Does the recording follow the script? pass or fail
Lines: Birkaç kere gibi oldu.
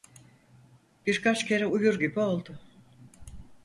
fail